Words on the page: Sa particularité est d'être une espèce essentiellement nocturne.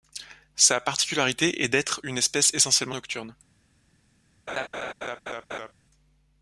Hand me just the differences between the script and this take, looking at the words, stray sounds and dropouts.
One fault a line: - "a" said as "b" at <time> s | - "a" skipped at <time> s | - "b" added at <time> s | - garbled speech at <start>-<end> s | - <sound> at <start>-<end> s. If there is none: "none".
- laugh at 4.5-5.7 s